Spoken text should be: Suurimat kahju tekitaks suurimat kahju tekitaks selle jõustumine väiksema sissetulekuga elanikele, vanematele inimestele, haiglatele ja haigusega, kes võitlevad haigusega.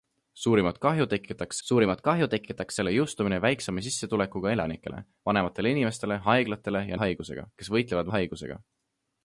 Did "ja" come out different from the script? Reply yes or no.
no